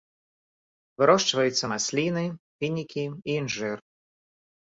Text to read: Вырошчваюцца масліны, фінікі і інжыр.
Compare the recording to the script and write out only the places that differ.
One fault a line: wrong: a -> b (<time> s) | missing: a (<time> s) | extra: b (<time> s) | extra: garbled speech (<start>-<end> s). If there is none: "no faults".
no faults